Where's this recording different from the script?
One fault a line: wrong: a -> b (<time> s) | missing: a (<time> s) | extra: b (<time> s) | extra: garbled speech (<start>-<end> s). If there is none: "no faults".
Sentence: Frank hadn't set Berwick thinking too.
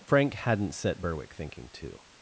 no faults